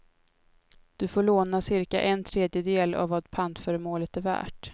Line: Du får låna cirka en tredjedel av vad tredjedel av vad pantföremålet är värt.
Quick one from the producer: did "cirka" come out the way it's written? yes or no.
yes